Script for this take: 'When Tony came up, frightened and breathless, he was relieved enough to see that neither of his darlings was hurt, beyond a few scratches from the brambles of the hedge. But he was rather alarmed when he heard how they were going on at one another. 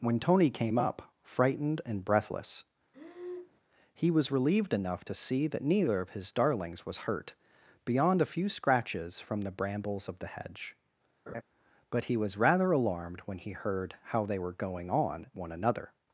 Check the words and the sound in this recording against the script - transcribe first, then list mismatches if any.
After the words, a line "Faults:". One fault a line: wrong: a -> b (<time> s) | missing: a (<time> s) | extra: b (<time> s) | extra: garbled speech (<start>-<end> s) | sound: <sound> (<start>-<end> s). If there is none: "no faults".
'When Tony came up, frightened and breathless, he was relieved enough to see that neither of his darlings was hurt, beyond a few scratches from the brambles of the hedge. But he was rather alarmed when he heard how they were going on one another.
Faults:
sound: breath (2.9-3.6 s)
sound: laugh (11.3-11.4 s)
missing: at (15.3 s)